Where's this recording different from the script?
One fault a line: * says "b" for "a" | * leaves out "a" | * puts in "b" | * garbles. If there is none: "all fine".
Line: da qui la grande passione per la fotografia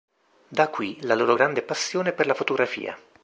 * puts in "loro"